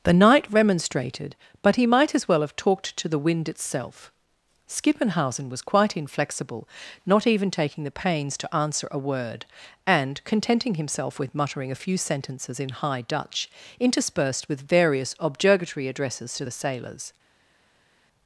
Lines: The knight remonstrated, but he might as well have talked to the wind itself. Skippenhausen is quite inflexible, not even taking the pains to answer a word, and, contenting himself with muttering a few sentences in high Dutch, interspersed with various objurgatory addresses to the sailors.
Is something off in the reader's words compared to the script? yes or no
yes